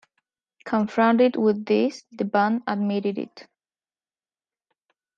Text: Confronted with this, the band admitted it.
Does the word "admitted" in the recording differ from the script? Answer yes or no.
no